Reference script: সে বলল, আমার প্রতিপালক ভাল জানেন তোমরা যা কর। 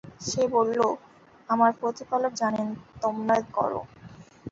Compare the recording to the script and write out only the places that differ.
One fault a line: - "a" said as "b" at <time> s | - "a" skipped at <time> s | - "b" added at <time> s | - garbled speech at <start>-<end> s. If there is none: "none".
- "ভাল" skipped at 2.3 s
- "যা" skipped at 3.3 s